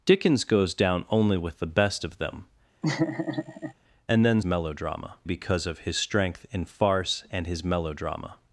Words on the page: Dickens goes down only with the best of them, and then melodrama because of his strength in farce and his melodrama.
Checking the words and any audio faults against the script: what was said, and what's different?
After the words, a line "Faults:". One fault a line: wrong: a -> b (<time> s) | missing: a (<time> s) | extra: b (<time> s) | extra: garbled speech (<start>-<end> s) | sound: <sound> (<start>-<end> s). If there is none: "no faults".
Dickens goes down only with the best of them, and then melodrama because of his strength in farce and his melodrama.
Faults:
sound: laugh (2.8-3.7 s)